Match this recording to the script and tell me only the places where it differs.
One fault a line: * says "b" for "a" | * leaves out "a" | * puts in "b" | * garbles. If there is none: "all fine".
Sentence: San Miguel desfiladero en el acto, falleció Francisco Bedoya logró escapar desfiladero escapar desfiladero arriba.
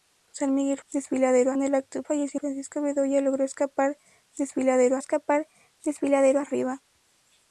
all fine